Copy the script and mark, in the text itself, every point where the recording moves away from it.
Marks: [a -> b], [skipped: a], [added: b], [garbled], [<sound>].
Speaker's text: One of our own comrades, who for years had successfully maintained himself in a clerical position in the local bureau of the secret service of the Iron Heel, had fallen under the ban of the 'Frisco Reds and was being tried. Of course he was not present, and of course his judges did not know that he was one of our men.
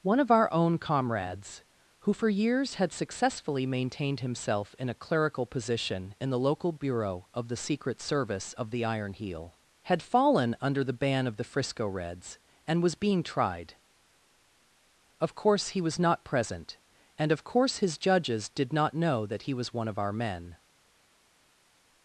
One of our own comrades, who for years had successfully maintained himself in a clerical position in the local bureau of the secret service of the Iron Heel, had fallen under the ban of the 'Frisco Reds and was being tried. Of course he was not present, and of course his judges did not know that he was one of our men.